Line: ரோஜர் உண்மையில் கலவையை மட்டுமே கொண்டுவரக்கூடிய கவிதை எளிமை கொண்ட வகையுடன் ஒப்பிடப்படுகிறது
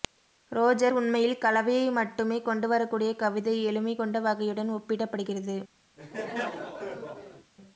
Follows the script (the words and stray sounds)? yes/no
no